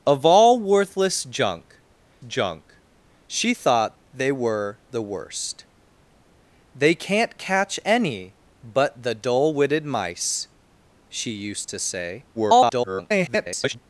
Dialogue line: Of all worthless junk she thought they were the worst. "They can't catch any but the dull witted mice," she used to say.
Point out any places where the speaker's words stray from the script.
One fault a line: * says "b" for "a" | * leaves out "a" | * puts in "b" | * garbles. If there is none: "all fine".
* puts in "junk"
* garbles